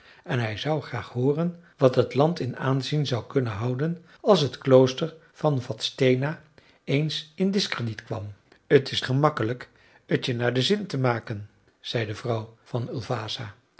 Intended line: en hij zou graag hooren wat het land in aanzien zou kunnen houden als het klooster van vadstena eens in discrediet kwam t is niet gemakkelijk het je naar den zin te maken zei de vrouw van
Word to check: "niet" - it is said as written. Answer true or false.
false